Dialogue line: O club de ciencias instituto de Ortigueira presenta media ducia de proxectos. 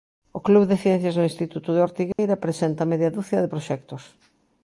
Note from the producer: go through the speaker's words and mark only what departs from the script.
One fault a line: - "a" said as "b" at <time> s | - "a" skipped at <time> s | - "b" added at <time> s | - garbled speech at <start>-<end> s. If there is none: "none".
- "do" added at 1.1 s